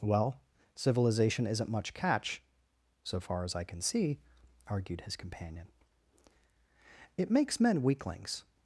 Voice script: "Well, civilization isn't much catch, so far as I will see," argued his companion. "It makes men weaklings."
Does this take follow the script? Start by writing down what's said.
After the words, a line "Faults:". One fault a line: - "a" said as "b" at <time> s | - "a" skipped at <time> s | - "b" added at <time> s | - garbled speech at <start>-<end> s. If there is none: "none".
"Well, civilization isn't much catch, so far as I can see," argued his companion. "It makes men weaklings."
Faults:
- "will" said as "can" at 3.6 s